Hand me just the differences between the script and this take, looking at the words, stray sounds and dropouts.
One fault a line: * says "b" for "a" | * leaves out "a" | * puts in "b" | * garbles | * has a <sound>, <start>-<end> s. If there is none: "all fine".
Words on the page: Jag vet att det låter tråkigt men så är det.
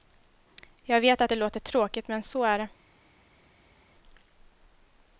all fine